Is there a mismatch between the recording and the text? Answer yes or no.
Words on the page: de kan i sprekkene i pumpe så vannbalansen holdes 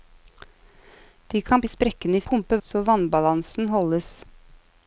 no